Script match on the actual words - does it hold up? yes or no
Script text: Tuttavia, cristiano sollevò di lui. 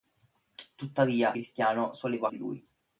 yes